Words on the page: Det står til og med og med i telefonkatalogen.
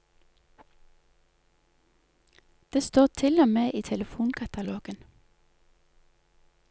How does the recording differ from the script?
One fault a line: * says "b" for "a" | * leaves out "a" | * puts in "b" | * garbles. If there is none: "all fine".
* leaves out "og med"